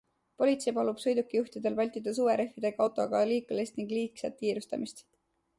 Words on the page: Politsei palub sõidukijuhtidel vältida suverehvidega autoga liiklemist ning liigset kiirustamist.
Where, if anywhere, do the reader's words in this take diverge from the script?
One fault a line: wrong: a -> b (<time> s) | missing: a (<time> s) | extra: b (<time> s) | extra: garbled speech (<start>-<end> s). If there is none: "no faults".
no faults